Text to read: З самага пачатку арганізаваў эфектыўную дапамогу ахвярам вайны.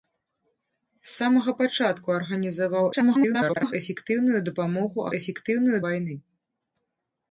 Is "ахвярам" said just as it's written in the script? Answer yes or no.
no